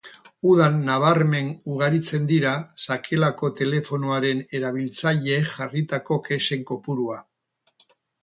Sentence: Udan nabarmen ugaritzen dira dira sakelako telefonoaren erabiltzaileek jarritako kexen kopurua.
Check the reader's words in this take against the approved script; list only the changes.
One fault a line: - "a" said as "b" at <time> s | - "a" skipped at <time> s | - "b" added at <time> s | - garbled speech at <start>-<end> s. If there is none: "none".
- "dira" skipped at 2.5 s